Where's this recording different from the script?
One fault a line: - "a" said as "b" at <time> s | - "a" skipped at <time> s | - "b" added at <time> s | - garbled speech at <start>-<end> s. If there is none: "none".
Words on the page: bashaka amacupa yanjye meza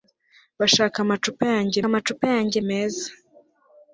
- "amacupa yanjye" added at 1.9 s